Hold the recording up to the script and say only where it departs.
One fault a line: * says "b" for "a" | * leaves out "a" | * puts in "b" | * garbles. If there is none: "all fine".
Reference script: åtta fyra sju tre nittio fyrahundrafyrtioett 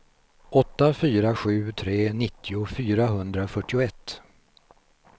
all fine